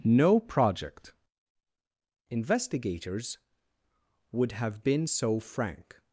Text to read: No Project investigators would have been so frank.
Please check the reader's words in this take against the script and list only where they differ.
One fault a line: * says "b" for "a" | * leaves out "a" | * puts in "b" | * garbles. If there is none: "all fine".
all fine